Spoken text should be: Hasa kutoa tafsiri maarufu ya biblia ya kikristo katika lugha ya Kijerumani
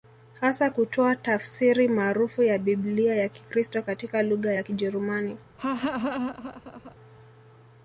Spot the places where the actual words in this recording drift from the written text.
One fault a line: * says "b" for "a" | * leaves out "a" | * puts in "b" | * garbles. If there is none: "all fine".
all fine